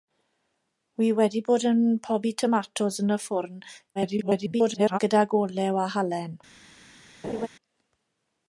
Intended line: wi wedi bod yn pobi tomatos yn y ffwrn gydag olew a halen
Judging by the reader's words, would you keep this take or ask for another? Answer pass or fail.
fail